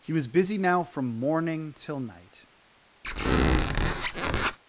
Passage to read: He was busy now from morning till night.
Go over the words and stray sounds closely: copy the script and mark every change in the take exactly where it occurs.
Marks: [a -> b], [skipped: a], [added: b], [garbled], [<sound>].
He was busy now from morning till night. [squeak]